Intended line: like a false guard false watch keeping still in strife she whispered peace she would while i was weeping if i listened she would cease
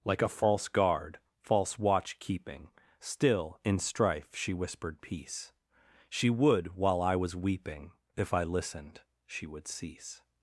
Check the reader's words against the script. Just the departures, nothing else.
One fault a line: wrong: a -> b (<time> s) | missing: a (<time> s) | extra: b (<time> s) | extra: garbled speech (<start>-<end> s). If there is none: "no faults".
no faults